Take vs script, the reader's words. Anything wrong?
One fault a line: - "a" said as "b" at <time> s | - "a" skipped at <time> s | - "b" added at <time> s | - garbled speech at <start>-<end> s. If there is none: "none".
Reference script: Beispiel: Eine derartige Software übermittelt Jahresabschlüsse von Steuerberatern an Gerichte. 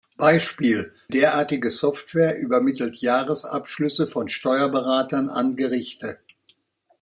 - "Eine" skipped at 0.9 s